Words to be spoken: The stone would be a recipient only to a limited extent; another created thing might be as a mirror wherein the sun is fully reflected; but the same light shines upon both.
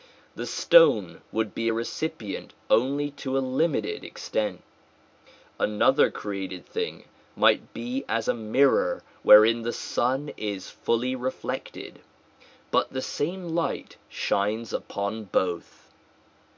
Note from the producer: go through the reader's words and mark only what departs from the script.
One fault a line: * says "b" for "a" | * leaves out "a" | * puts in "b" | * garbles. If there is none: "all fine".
all fine